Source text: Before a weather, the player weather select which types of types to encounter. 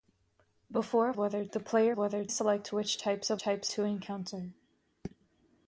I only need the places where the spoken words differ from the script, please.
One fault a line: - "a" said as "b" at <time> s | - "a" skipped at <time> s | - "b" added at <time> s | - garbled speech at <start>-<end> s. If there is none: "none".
none